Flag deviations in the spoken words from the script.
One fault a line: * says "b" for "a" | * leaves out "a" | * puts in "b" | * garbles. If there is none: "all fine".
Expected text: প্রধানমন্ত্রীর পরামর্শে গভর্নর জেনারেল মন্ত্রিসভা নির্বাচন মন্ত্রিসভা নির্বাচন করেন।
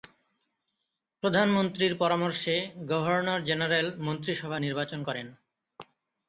* leaves out "মন্ত্রিসভা নির্বাচন"